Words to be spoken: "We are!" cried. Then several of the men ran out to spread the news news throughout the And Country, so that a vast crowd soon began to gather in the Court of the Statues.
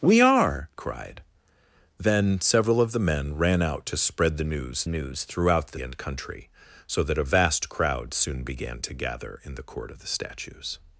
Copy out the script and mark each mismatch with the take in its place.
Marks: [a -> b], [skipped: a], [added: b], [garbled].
"We are!" cried. Then several of the men ran out to spread the news news throughout the And Country, so that a vast crowd soon began to gather in the Court of the Statues.